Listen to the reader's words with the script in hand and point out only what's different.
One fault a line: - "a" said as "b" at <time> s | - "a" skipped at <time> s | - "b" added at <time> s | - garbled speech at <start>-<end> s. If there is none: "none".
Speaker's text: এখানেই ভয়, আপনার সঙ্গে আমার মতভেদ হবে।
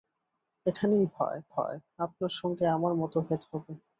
- "ভয়" added at 1.5 s